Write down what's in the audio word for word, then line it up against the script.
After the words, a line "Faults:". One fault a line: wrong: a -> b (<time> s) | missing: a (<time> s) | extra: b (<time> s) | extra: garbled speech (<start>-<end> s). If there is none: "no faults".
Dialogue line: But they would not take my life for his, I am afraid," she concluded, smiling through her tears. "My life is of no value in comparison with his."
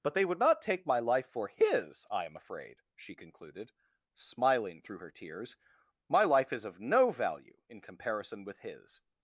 But they would not take my life for his, I am afraid," she concluded, smiling through her tears. "My life is of no value in comparison with his."
Faults:
no faults